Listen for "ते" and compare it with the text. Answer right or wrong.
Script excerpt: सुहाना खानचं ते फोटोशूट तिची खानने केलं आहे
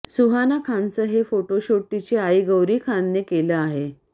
wrong